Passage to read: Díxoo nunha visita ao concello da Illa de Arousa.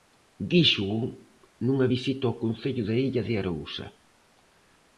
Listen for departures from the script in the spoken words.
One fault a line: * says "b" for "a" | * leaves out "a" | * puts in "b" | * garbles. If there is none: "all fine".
all fine